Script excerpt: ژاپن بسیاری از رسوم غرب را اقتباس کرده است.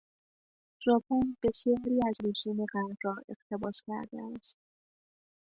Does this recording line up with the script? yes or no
yes